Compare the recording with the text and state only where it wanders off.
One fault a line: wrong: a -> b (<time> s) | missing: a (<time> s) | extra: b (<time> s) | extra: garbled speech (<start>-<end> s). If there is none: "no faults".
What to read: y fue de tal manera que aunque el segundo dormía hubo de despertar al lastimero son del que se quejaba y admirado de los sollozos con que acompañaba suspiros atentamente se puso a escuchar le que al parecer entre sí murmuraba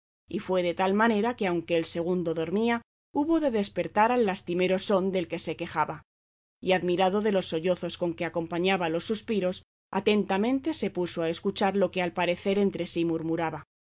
extra: los (8.9 s)
wrong: le -> lo (11.8 s)